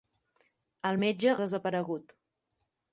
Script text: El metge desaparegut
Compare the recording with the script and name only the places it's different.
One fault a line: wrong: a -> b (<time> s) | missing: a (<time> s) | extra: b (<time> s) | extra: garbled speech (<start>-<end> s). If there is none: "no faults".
no faults